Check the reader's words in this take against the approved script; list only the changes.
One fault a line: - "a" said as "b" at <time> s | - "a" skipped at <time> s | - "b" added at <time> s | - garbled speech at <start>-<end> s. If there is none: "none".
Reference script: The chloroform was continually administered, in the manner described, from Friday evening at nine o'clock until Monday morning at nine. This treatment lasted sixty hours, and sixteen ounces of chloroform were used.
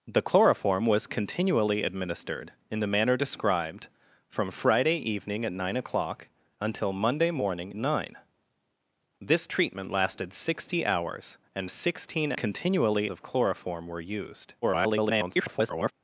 - "at" skipped at 7.8 s
- "ounces" said as "continually" at 12.3 s
- garbled speech at 14.6-15.9 s